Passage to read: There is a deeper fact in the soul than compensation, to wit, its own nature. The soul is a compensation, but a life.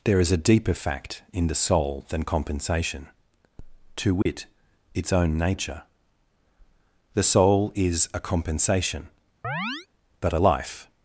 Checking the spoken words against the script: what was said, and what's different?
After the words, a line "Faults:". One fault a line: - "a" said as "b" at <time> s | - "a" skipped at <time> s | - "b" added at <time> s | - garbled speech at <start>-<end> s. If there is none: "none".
There is a deeper fact in the soul than compensation, to wit, its own nature. The soul is a compensation, but a life.
Faults:
none